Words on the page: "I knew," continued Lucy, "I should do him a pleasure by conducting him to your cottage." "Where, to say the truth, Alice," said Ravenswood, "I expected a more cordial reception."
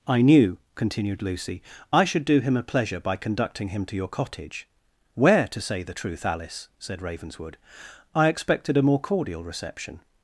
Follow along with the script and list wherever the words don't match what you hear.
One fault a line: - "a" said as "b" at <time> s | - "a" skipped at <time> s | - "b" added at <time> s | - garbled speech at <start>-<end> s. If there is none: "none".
none